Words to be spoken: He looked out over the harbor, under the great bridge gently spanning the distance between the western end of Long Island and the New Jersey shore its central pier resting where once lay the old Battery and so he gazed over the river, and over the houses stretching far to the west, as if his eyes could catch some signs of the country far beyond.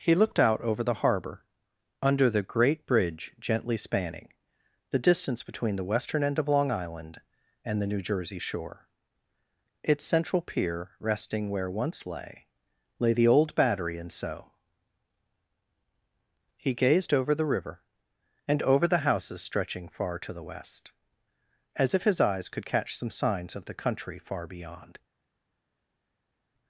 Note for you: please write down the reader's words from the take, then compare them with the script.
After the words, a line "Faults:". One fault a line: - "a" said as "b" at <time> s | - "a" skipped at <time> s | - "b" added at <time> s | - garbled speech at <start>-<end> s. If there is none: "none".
He looked out over the harbor, under the great bridge gently spanning the distance between the western end of Long Island and the New Jersey shore its central pier resting where once lay lay the old Battery and so he gazed over the river, and over the houses stretching far to the west, as if his eyes could catch some signs of the country far beyond.
Faults:
- "lay" added at 13.0 s